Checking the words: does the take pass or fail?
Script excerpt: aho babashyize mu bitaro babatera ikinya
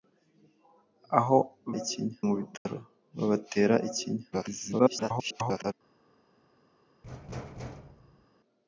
fail